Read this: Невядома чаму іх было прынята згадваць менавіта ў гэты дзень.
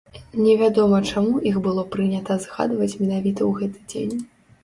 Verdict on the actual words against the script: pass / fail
pass